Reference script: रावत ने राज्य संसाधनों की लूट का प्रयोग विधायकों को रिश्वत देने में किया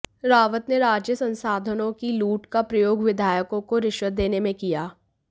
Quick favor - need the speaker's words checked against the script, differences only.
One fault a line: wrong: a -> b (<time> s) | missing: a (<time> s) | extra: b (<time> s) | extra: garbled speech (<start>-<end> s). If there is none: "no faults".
no faults